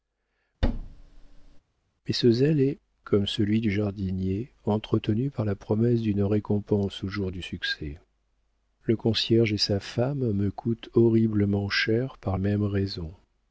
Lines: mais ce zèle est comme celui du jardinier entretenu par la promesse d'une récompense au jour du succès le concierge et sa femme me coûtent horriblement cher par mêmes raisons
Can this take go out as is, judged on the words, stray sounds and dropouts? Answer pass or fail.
fail